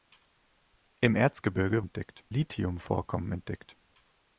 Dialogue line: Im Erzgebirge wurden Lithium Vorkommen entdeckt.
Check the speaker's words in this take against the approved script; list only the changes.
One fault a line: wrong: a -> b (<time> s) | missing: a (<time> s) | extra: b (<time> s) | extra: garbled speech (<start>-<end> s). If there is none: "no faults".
wrong: wurden -> entdeckt (1.8 s)